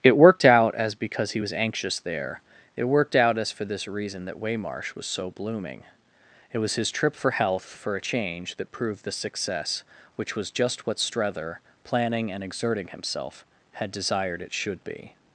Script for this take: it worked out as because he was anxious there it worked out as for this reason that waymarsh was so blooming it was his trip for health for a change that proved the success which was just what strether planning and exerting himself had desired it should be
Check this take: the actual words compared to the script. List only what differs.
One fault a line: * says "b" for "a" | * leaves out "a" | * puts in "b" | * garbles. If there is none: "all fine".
all fine